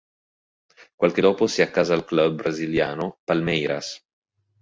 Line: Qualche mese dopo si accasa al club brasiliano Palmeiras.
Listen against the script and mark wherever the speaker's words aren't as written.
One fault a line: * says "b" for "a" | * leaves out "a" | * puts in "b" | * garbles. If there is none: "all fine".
* leaves out "mese"